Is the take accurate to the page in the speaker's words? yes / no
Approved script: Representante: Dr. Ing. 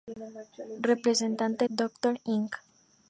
yes